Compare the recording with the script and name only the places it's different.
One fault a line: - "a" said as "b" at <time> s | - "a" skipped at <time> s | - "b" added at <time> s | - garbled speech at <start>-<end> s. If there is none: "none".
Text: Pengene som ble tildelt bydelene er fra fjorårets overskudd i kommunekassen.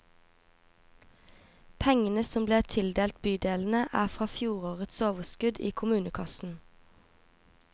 none